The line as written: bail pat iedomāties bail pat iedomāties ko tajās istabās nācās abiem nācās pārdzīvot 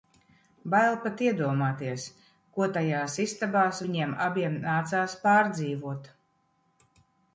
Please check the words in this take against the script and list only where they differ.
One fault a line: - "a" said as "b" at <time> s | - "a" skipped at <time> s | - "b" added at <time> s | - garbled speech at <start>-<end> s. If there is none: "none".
- "bail pat iedomāties" skipped at 2.0 s
- "nācās" said as "viņiem" at 3.9 s